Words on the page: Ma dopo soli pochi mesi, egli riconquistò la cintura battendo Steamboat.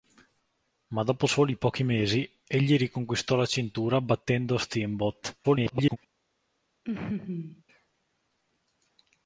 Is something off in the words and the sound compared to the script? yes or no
yes